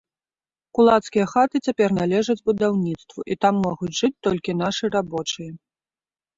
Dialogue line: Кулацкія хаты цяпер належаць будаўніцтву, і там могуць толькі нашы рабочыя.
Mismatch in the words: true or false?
true